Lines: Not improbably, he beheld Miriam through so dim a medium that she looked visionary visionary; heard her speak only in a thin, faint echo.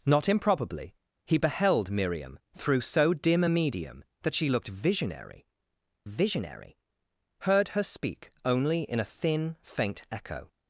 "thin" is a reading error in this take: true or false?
false